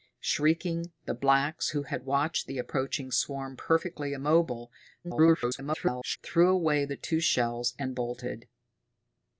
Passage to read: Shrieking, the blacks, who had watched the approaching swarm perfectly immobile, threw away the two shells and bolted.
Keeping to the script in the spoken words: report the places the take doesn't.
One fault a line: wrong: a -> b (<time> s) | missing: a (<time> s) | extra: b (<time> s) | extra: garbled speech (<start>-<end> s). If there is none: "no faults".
extra: garbled speech (5.0-6.2 s)